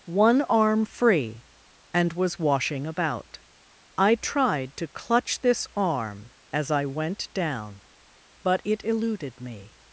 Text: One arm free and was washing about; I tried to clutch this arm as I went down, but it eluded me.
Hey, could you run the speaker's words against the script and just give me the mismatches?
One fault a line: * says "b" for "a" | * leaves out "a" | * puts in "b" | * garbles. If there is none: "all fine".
all fine